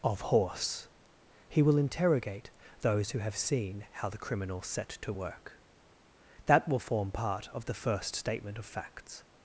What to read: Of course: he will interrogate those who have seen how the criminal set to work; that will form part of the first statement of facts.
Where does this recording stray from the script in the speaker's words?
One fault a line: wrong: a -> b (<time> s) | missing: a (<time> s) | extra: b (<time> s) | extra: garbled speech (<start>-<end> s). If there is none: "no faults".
wrong: course -> horse (0.2 s)